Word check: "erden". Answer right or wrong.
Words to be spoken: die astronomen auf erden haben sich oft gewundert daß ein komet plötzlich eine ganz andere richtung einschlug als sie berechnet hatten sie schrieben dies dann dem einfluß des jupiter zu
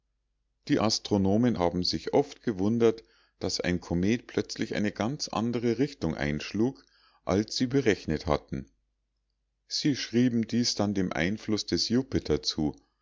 wrong